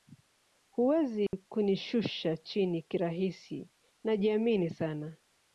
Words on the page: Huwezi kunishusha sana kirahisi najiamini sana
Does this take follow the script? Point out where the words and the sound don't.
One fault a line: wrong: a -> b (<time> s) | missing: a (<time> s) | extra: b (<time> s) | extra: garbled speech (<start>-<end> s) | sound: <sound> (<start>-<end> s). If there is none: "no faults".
sound: dropout (1.3-1.3 s)
wrong: sana -> chini (2.4 s)